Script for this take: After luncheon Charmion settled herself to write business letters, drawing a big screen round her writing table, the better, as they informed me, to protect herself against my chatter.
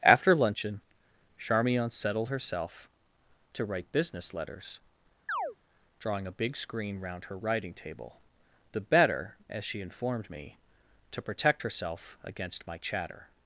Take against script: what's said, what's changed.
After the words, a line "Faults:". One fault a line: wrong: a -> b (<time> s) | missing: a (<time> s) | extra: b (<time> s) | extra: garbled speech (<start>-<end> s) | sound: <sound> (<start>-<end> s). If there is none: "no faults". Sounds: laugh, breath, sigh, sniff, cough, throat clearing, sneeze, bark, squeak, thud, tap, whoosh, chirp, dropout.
After luncheon Charmion settled herself to write business letters, drawing a big screen round her writing table, the better, as she informed me, to protect herself against my chatter.
Faults:
sound: chirp (5.3-5.6 s)
wrong: they -> she (9.6 s)